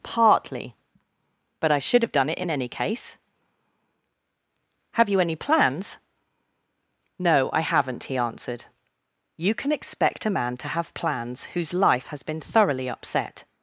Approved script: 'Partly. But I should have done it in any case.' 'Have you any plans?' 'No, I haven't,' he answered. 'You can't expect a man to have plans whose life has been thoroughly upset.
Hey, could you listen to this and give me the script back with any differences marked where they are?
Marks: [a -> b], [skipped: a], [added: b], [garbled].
'Partly. But I should have done it in any case.' 'Have you any plans?' 'No, I haven't,' he answered. 'You [can't -> can] expect a man to have plans whose life has been thoroughly upset.